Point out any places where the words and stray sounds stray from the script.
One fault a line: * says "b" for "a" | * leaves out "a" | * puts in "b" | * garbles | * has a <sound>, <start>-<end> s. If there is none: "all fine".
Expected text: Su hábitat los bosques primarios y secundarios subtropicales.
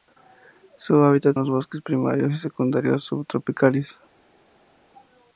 all fine